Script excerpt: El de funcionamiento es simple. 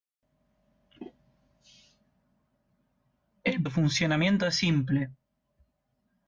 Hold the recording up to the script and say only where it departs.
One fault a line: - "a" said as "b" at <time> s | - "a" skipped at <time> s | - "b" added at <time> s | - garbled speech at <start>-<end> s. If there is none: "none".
none